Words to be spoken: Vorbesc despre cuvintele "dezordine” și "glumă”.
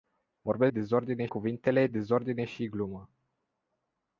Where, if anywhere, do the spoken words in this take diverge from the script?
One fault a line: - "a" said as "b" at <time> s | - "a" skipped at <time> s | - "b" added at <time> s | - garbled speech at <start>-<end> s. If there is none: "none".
- "despre" said as "dezordine" at 0.7 s